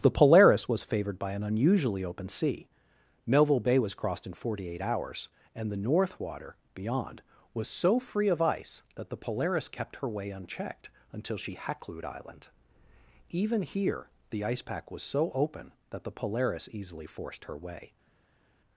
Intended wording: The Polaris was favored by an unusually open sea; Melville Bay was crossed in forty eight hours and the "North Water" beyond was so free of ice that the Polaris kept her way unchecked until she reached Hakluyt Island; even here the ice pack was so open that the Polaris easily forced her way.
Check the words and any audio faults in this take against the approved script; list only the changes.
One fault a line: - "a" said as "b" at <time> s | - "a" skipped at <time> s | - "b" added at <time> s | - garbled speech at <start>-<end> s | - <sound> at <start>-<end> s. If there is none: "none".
- "reached" skipped at 11.5 s